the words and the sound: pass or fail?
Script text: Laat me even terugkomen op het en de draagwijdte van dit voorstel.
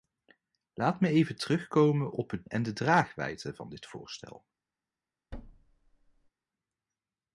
fail